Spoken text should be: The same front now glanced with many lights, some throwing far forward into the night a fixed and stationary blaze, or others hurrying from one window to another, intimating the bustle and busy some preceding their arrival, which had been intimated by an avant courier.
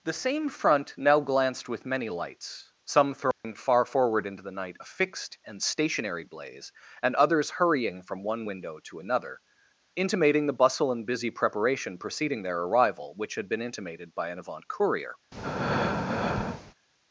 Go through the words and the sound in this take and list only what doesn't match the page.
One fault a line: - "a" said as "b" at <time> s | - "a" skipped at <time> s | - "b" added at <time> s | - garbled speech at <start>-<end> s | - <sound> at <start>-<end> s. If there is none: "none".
- dropout at 3.3-3.4 s
- "or" said as "and" at 7.0 s
- "some" said as "preparation" at 11.3 s
- breath at 15.3-16.7 s